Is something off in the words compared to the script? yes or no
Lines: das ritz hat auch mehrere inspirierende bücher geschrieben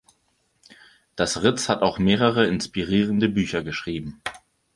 no